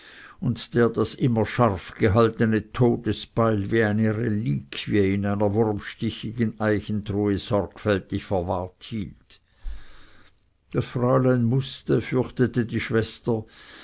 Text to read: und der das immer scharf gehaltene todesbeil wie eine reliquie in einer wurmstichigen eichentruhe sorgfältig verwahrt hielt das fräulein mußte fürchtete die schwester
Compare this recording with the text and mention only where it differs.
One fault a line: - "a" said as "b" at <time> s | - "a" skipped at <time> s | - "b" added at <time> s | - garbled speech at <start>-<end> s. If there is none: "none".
none